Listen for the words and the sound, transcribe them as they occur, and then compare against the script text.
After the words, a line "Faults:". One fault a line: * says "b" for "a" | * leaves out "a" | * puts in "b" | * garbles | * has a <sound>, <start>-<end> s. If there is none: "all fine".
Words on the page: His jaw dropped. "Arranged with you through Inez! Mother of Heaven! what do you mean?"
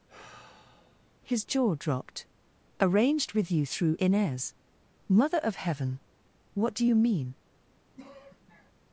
His jaw dropped. "Arranged with you through Inez! Mother of Heaven! what do you mean?"
Faults:
* has a sigh, 0.1-1.1 s
* has a sigh, 8.0-8.7 s